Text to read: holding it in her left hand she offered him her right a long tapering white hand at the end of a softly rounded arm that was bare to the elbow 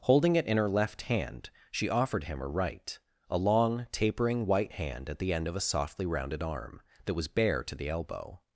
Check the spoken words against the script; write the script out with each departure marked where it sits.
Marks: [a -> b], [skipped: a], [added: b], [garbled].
holding it in her left hand she offered him her right a long tapering white hand at the end of a softly rounded arm that was bare to the elbow